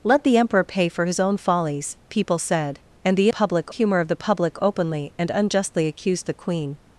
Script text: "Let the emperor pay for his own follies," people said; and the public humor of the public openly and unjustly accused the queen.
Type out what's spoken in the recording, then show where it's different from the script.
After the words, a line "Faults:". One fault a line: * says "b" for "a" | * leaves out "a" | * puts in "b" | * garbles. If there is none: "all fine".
"Let the emperor pay for his own follies," people said; and the public humor of the public openly and unjustly accused the queen.
Faults:
all fine